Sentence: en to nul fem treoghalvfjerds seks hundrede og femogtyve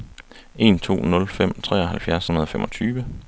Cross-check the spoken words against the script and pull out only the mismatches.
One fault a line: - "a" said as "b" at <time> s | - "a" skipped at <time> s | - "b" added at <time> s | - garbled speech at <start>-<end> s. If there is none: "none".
- "seks" skipped at 2.2 s